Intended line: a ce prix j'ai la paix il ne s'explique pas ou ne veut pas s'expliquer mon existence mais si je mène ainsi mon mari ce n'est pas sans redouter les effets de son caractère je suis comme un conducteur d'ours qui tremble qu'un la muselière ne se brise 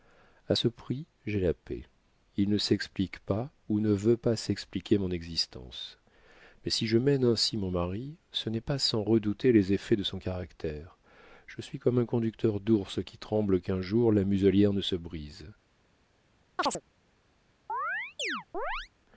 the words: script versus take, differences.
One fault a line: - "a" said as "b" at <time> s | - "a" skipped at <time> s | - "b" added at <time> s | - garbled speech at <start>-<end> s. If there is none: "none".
- "jour" added at 13.8 s